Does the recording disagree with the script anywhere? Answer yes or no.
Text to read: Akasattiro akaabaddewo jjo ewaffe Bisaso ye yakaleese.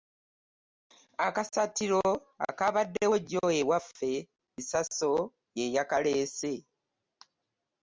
no